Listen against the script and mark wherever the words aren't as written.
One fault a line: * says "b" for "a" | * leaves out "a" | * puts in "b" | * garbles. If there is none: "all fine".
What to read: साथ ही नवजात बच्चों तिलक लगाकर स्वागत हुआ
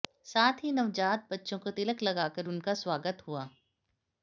* puts in "को"
* puts in "उनका"